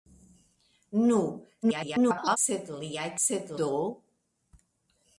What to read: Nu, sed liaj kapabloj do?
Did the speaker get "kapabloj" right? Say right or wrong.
wrong